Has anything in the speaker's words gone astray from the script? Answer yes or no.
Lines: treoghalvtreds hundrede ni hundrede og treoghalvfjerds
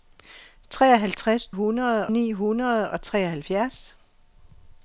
no